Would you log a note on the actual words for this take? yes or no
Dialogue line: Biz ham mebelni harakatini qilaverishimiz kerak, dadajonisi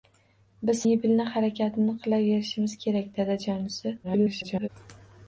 yes